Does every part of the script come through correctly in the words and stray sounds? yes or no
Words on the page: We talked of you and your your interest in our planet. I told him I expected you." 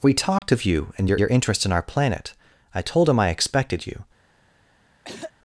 no